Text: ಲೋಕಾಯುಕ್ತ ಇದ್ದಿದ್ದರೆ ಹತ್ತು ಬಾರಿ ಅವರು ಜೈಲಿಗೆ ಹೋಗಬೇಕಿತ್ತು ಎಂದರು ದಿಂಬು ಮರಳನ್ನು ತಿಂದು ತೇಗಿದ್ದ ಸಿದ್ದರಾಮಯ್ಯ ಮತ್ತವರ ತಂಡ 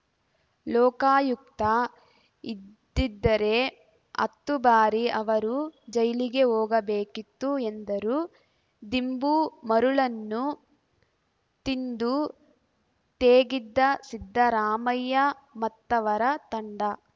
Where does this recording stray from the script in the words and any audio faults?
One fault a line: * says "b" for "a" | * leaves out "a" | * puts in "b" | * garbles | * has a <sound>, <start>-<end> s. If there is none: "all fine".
all fine